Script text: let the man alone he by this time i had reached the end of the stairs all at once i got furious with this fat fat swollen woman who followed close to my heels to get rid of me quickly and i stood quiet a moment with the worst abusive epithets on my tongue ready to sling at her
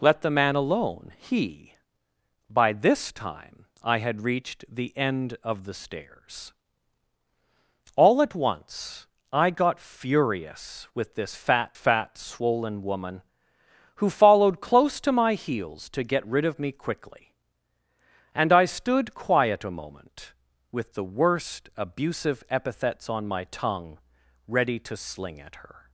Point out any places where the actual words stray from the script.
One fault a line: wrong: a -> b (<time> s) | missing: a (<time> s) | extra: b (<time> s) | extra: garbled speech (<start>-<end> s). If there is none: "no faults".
no faults